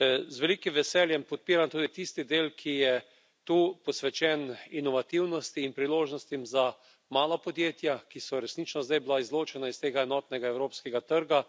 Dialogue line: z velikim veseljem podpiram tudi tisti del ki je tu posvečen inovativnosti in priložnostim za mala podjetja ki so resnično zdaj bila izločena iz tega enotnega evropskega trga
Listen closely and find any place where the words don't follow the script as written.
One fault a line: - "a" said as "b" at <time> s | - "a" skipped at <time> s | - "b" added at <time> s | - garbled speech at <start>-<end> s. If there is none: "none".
none